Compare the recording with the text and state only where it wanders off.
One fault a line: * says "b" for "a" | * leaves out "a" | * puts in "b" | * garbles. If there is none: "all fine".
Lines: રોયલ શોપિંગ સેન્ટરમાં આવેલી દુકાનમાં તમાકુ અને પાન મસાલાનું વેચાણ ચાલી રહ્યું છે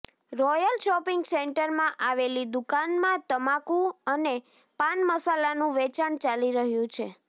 all fine